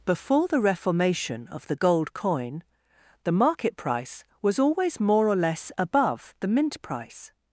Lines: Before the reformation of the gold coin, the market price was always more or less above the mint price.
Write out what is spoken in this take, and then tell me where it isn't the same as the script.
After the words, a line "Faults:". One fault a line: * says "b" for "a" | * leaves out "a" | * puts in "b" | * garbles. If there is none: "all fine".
Before the reformation of the gold coin, the market price was always more or less above the mint price.
Faults:
all fine